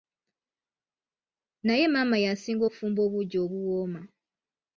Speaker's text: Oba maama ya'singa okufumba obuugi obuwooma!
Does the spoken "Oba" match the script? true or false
false